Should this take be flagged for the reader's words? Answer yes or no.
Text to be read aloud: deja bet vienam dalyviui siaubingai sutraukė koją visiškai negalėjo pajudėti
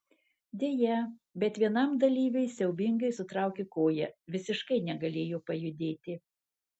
no